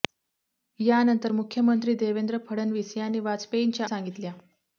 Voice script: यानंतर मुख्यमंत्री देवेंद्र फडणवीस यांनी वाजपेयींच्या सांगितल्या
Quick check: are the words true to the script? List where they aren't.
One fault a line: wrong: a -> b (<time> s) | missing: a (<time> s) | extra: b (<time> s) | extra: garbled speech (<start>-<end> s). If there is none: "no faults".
no faults